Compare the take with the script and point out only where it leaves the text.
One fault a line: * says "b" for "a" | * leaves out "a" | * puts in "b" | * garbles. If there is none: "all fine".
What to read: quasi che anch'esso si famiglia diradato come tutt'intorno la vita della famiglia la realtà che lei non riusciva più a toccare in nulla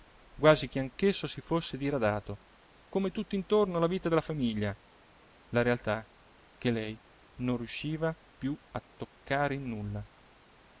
* says "fosse" for "famiglia"